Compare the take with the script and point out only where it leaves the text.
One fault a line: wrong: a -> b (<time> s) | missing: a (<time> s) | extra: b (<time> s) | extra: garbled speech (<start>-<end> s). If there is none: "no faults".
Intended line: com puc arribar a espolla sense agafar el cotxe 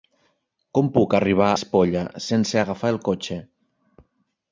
missing: a (1.5 s)